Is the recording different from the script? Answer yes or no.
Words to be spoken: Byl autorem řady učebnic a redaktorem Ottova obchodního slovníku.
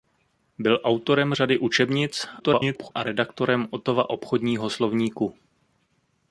yes